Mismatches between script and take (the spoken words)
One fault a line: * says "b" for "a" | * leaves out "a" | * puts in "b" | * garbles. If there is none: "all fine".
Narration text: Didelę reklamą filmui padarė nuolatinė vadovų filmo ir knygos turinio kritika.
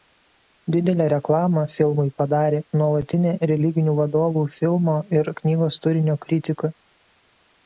* puts in "religinių"